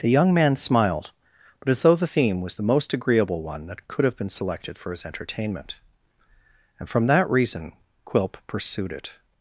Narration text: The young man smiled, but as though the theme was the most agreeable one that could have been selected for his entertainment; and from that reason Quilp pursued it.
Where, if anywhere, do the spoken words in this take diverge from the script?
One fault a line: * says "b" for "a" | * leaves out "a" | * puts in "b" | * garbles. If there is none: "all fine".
all fine